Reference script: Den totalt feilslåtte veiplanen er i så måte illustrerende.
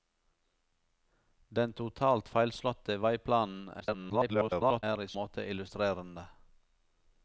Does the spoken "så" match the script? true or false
false